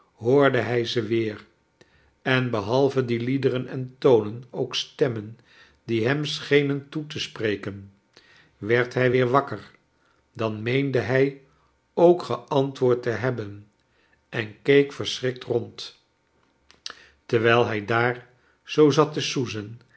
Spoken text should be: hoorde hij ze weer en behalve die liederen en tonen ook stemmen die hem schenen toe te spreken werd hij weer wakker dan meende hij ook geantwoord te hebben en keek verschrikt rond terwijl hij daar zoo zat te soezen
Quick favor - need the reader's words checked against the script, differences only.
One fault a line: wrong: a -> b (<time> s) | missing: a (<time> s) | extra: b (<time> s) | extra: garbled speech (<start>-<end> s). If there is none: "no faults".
no faults